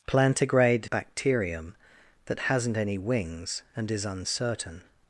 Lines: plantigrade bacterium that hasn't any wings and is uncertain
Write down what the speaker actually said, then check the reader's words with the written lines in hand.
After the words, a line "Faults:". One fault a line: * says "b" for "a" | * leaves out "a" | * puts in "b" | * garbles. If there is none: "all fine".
plantigrade bacterium that hasn't any wings and is uncertain
Faults:
all fine